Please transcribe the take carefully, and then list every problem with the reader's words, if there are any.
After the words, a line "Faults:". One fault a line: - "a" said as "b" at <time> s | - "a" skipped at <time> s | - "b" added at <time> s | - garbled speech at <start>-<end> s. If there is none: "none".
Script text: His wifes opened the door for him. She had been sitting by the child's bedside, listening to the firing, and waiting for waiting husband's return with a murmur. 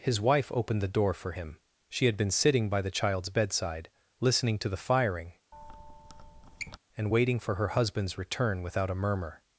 His wife opened the door for him. She had been sitting by the child's bedside, listening to the firing, and waiting for her husband's return without a murmur.
Faults:
- "wifes" said as "wife" at 0.2 s
- "waiting" said as "her" at 7.6 s
- "with" said as "without" at 8.6 s